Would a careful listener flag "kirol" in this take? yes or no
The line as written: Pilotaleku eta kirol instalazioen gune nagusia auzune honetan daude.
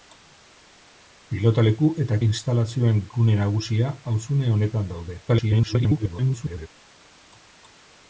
yes